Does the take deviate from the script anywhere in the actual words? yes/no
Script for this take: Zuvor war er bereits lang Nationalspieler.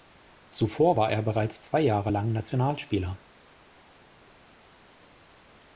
yes